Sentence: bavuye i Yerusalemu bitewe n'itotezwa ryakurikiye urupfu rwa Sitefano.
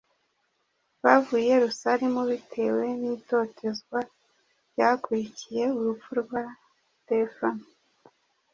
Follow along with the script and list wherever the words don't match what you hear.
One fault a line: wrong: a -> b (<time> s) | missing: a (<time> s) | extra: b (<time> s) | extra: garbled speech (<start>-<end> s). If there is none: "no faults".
no faults